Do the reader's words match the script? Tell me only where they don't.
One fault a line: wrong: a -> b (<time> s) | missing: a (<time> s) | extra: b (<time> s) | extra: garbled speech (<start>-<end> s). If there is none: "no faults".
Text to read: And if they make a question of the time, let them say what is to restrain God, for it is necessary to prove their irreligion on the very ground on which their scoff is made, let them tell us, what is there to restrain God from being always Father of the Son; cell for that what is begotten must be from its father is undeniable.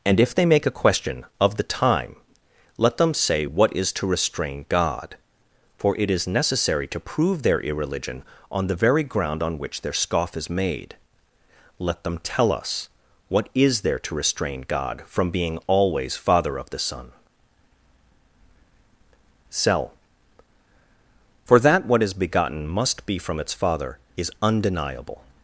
no faults